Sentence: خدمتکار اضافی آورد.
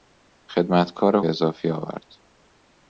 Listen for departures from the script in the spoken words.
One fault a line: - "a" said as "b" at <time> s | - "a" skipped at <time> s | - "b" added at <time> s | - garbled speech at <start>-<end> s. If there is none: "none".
none